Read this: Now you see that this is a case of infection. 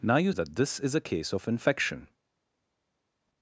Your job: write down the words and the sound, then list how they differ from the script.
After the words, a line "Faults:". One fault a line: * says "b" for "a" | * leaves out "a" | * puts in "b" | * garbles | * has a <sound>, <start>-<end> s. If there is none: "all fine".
Now you that this is a case of infection.
Faults:
* leaves out "see"